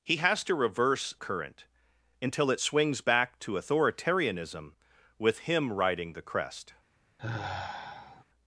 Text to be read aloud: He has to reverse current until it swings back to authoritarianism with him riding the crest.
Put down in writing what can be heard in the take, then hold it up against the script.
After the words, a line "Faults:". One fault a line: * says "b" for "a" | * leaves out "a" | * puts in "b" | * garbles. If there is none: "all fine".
He has to reverse current until it swings back to authoritarianism with him riding the crest.
Faults:
all fine